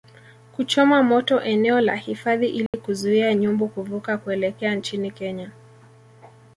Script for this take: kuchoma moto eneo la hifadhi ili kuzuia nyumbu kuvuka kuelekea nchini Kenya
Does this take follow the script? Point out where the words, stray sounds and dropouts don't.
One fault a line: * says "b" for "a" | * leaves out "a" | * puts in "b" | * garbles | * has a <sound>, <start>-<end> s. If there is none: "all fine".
* has a dropout, 2.7-2.7 s